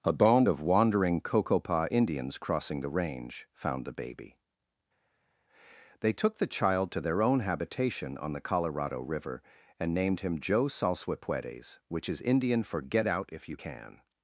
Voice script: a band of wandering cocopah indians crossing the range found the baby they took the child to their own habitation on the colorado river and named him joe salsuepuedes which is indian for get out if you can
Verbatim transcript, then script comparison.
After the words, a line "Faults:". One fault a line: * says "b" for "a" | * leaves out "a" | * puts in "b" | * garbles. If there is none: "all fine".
a band of wandering cocopah indians crossing the range found the baby they took the child to their own habitation on the colorado river and named him joe salsuepuedes which is indian for get out if you can
Faults:
all fine